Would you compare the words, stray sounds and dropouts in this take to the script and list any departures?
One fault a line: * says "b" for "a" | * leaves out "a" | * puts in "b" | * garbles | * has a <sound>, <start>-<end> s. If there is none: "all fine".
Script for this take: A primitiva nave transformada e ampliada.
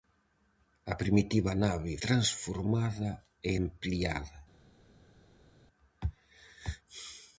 all fine